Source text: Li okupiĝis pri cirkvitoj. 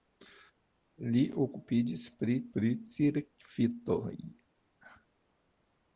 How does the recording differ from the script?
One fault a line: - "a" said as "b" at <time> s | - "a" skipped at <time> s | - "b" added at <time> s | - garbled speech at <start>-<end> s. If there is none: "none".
- "pri" added at 2.6 s